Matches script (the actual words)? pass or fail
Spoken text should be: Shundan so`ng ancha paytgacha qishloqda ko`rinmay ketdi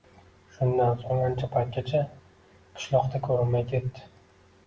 pass